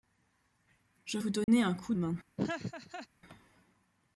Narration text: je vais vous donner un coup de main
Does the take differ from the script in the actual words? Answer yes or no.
yes